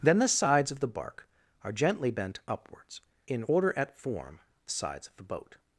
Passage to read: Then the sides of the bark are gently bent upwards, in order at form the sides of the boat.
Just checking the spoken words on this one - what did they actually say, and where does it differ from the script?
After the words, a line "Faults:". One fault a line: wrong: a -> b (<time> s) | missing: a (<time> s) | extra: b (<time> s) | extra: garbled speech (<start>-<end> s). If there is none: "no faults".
Then the sides of the bark are gently bent upwards, in order at form the sides of the boat.
Faults:
no faults